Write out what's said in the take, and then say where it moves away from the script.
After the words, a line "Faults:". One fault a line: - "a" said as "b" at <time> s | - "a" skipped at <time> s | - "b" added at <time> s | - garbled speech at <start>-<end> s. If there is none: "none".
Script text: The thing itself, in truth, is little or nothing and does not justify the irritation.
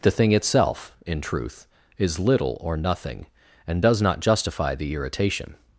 The thing itself, in truth, is little or nothing and does not justify the irritation.
Faults:
none